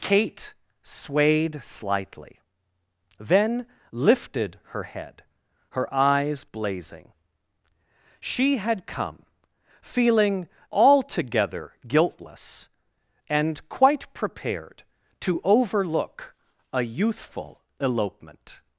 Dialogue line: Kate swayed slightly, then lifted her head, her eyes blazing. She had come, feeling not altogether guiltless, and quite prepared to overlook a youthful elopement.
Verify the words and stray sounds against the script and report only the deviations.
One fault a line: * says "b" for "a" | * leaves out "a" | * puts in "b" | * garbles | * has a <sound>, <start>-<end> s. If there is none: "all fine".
* leaves out "not"